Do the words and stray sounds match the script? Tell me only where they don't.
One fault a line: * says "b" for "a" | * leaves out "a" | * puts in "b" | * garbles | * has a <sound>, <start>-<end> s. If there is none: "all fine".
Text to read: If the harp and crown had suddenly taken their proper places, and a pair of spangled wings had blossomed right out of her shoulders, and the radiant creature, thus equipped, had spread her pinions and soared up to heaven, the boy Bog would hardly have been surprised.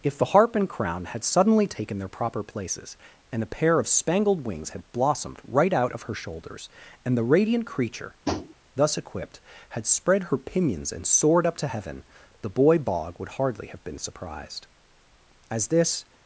* has a tap, 8.2-8.5 s
* puts in "As this"